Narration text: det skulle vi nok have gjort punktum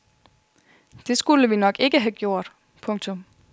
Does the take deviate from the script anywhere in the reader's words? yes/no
yes